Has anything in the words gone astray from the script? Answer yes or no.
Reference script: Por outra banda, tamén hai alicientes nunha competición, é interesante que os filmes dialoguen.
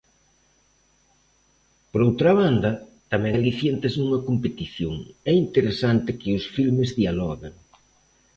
yes